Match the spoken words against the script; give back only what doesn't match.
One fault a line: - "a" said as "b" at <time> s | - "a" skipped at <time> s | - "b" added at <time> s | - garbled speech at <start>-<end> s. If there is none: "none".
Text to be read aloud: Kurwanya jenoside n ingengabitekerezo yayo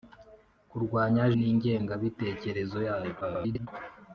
- "jenoside" skipped at 1.2 s
- garbled speech at 3.2-3.7 s